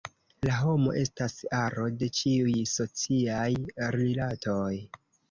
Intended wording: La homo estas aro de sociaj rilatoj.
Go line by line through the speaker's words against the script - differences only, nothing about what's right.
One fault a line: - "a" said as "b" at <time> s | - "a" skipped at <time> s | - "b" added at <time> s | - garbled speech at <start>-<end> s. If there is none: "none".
- "ĉiuj" added at 2.2 s